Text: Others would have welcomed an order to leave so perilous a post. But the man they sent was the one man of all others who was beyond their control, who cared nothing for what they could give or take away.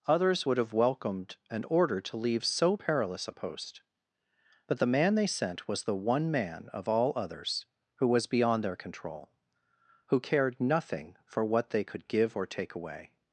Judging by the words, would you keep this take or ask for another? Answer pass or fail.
pass